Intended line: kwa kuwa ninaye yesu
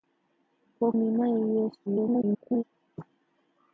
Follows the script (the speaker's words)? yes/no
no